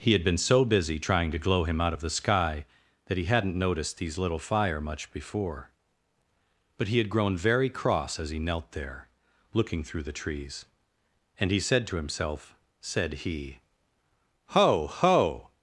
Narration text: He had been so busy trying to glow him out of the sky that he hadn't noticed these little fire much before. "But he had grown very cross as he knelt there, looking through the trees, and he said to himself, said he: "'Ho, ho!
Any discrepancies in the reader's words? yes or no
no